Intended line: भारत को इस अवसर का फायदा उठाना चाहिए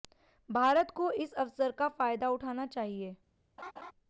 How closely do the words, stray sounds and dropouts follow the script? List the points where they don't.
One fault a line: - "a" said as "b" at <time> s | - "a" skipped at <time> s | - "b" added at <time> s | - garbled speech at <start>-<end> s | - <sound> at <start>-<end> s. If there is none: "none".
- laugh at 3.6-3.9 s